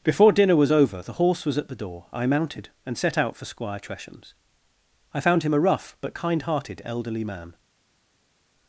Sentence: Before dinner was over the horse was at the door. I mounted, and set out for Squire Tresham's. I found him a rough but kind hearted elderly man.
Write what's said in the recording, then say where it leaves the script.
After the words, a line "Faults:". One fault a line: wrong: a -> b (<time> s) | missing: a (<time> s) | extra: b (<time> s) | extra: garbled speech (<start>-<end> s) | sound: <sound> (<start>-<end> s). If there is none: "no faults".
Before dinner was over the horse was at the door. I mounted, and set out for Squire Tresham's. I found him a rough but kind hearted elderly man.
Faults:
no faults